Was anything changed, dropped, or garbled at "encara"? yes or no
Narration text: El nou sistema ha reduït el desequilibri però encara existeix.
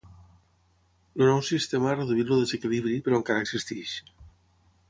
no